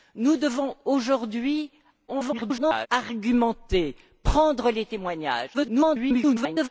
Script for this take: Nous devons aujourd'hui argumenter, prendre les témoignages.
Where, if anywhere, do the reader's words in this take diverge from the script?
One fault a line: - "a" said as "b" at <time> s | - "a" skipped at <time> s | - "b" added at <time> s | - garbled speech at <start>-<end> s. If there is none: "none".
- garbled speech at 2.1-2.9 s
- garbled speech at 5.5-6.7 s